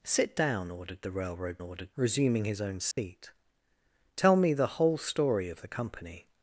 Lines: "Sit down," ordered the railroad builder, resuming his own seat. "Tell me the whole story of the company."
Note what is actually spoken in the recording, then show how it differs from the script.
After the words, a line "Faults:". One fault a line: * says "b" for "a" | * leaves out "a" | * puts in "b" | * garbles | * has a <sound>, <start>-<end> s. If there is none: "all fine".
"Sit down," ordered the railroad ordered, resuming his own seat. "Tell me the whole story of the company."
Faults:
* says "ordered" for "builder"
* has a dropout, 2.9-3.0 s